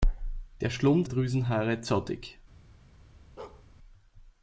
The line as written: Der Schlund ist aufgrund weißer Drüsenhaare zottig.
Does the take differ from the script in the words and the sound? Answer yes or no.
yes